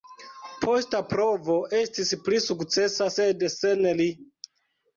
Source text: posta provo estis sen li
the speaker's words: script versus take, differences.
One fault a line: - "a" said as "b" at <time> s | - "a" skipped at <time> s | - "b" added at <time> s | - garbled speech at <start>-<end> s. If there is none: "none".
- "pli sukcesa sed" added at 2.3 s